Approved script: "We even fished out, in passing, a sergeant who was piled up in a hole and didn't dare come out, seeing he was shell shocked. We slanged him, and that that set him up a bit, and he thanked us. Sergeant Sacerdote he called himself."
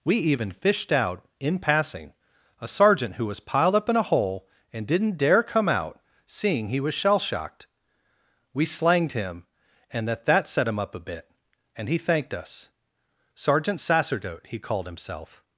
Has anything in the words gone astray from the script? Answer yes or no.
no